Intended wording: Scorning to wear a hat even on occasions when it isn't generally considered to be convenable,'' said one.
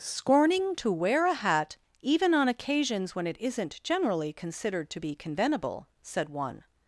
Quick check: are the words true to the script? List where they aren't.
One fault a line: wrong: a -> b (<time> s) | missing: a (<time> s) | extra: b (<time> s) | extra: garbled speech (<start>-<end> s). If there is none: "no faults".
no faults